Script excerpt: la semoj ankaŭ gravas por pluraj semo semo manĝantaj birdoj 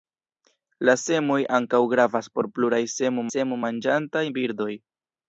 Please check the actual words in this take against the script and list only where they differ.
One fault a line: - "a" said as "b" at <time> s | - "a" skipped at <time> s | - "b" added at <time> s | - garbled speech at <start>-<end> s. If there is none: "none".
none